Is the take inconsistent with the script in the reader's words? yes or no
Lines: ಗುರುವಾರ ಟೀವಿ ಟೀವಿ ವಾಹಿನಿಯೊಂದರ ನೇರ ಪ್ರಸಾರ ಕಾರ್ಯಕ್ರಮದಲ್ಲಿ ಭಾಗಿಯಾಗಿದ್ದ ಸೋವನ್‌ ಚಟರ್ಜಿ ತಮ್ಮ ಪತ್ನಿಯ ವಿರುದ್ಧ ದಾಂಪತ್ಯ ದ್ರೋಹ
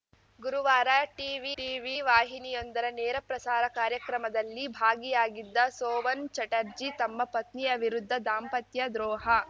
no